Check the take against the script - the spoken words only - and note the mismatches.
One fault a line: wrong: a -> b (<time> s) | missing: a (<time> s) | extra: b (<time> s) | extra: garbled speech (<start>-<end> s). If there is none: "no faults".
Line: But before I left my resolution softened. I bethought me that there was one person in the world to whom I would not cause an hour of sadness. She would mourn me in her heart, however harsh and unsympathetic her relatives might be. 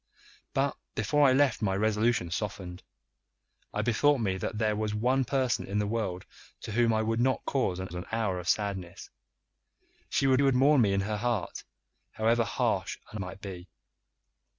extra: an (7.9 s)
extra: would (10.4 s)
missing: unsympathetic her relatives (13.2 s)